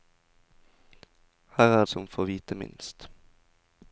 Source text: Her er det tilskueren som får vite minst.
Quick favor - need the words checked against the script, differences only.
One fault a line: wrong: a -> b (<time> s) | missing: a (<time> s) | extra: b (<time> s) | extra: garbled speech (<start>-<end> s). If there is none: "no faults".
missing: det tilskueren (1.9 s)